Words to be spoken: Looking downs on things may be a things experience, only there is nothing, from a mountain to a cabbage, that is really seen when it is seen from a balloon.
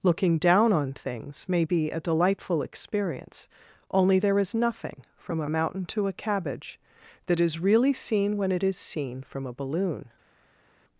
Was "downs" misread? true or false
true